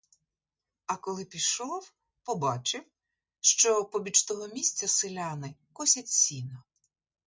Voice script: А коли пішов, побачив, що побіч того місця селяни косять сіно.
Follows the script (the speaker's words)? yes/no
yes